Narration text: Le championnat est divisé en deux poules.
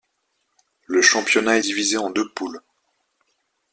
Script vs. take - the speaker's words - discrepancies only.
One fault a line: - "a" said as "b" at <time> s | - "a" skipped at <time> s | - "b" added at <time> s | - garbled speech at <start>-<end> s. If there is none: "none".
none